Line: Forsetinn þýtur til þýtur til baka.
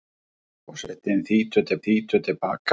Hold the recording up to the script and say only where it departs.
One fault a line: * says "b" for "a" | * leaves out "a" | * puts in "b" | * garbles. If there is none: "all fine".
all fine